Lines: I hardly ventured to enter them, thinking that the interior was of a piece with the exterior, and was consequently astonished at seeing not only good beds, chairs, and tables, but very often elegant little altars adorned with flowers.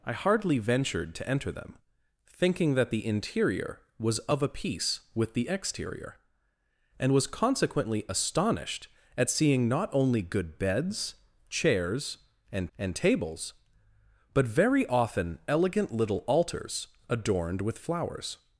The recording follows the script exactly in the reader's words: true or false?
false